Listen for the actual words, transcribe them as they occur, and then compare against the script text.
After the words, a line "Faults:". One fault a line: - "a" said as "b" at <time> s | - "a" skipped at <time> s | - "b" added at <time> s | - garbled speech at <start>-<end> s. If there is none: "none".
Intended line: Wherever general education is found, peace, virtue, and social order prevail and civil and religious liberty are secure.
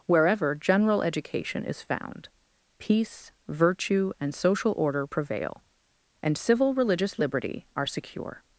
Wherever general education is found, peace, virtue, and social order prevail and civil religious liberty are secure.
Faults:
- "and" skipped at 6.7 s